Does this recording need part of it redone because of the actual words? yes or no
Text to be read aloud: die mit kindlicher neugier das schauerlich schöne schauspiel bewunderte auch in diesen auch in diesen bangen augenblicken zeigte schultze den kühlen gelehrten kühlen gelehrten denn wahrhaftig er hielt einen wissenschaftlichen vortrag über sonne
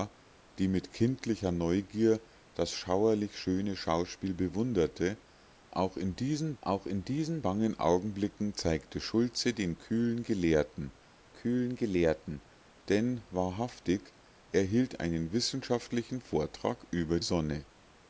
no